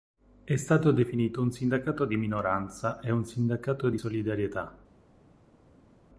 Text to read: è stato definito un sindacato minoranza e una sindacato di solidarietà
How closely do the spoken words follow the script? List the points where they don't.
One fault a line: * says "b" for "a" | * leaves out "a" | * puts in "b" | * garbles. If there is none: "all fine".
* puts in "di"
* says "un" for "una"